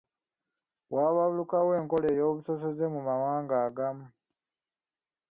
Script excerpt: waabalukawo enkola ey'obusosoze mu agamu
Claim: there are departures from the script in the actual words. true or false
true